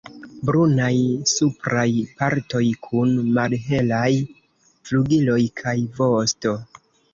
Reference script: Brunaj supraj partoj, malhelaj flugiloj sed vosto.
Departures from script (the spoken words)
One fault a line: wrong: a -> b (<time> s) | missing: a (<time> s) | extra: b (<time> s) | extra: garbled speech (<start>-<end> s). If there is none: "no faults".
extra: kun (2.9 s)
wrong: sed -> kaj (5.6 s)